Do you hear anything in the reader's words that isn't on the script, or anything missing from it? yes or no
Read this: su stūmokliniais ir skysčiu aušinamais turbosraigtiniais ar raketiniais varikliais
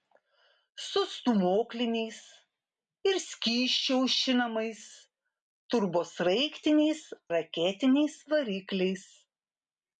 yes